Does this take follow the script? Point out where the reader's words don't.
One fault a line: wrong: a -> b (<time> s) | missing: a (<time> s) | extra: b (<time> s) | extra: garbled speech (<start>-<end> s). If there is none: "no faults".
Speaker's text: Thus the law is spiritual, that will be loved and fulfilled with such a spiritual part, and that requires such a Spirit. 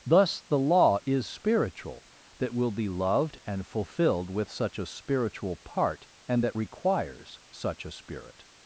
no faults